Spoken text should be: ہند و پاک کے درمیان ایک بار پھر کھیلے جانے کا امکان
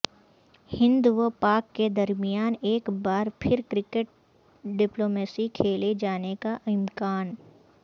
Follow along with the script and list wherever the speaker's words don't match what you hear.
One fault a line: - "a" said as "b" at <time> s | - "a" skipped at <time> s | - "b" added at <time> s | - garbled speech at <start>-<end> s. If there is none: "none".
- "کرکٹ ڈپلومیسی" added at 3.7 s